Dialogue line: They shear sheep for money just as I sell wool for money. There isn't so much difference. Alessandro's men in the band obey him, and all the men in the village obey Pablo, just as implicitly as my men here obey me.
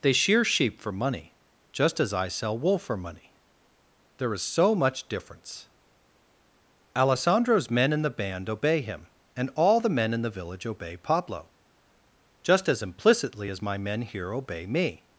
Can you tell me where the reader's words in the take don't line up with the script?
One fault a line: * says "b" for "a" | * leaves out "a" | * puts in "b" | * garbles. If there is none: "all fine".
* says "is" for "isn't"